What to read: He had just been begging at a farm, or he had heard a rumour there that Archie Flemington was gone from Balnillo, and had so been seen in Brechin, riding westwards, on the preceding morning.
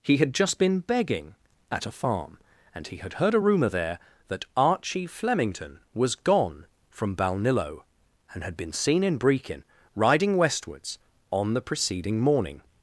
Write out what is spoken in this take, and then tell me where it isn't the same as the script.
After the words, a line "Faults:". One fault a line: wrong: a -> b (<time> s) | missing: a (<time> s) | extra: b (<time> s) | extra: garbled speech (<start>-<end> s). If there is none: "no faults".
He had just been begging at a farm, and he had heard a rumour there that Archie Flemington was gone from Balnillo, and had been seen in Brechin, riding westwards, on the preceding morning.
Faults:
wrong: or -> and (2.7 s)
missing: so (8.6 s)